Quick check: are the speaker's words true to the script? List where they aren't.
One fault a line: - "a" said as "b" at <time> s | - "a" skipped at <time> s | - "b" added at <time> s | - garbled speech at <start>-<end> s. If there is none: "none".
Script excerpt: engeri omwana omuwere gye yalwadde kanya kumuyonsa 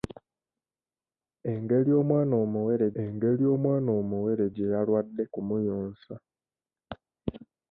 - "engeri omwana omuwere" added at 3.0 s
- "kanya" skipped at 5.2 s